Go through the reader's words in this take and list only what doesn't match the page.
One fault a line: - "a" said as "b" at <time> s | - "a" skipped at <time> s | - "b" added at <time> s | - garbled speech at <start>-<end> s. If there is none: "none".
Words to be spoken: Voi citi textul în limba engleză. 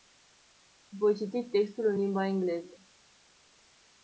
none